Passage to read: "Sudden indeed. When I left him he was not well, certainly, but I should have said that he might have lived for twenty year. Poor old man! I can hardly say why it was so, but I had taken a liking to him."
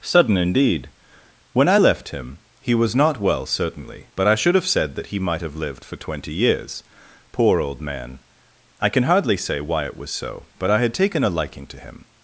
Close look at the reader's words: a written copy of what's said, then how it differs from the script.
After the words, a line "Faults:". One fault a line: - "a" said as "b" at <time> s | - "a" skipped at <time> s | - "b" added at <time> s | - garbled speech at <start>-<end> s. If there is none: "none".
"Sudden indeed. When I left him he was not well, certainly, but I should have said that he might have lived for twenty years. Poor old man! I can hardly say why it was so, but I had taken a liking to him."
Faults:
- "year" said as "years" at 6.3 s